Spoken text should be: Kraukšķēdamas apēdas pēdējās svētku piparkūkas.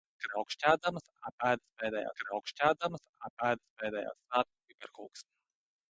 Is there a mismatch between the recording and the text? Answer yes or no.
yes